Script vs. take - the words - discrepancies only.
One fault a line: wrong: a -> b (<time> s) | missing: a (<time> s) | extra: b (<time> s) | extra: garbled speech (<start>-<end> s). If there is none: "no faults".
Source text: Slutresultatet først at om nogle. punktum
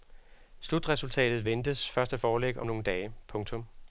extra: ventes (1.4 s)
extra: foreligge (2.2 s)
extra: dage (2.8 s)